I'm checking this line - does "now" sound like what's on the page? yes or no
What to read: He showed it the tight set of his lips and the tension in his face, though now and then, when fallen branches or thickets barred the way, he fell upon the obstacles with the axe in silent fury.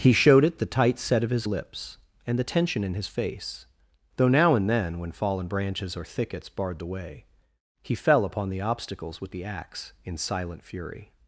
yes